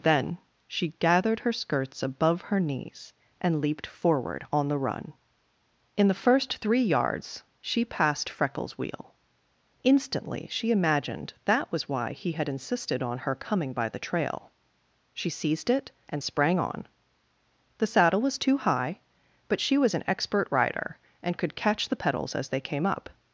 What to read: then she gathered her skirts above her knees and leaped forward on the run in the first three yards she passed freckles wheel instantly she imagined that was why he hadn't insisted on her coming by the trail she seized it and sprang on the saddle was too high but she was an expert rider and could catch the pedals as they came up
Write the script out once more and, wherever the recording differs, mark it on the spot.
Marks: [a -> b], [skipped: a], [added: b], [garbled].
then she gathered her skirts above her knees and leaped forward on the run in the first three yards she passed freckles wheel instantly she imagined that was why he [hadn't -> had] insisted on her coming by the trail she seized it and sprang on the saddle was too high but she was an expert rider and could catch the pedals as they came up